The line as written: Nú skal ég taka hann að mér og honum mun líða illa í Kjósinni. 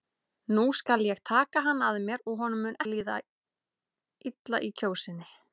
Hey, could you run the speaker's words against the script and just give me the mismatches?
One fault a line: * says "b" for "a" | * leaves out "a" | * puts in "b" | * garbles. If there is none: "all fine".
all fine